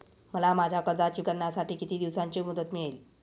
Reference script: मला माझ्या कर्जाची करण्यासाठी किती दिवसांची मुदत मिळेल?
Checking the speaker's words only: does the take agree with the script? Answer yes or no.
yes